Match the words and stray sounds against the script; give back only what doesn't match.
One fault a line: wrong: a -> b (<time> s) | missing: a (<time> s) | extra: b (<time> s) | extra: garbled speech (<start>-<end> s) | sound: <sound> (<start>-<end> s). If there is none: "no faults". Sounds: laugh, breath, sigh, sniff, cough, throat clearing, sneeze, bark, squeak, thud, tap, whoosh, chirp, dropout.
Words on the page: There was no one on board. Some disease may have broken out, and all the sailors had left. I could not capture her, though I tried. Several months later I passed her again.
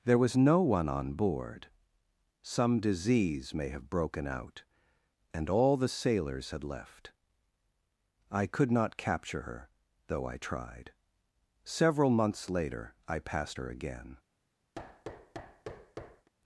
sound: thud (14.7-16.3 s)